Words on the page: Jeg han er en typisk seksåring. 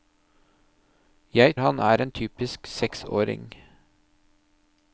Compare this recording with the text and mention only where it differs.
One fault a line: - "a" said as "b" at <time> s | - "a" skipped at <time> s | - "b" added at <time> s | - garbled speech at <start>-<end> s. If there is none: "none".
none